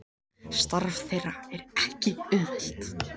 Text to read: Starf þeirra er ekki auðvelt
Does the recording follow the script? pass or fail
pass